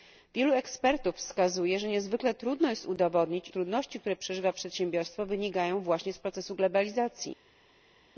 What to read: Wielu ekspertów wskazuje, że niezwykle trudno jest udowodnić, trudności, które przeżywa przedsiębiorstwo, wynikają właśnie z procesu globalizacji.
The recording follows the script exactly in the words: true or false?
true